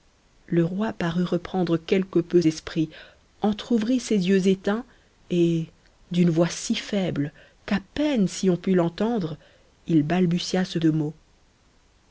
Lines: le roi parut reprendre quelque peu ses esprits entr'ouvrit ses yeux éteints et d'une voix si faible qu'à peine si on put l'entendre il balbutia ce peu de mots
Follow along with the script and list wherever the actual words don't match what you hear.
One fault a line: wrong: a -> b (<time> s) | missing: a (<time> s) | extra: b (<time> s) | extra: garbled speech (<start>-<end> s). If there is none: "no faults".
missing: ses (2.4 s)
missing: peu (10.8 s)